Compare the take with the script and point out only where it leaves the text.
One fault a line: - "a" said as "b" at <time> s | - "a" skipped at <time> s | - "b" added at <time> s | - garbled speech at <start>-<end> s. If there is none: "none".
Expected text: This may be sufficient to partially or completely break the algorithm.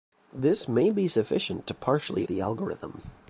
- "or completely break" skipped at 2.2 s